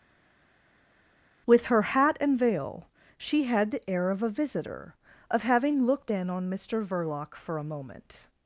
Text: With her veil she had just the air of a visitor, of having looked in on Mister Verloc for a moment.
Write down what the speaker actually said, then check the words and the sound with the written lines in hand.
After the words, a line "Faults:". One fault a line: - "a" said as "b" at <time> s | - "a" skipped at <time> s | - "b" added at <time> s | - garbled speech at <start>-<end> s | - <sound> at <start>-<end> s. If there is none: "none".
With her hat and veil she had the air of a visitor, of having looked in on Mister Verloc for a moment.
Faults:
- "hat and" added at 1.8 s
- "just" skipped at 3.7 s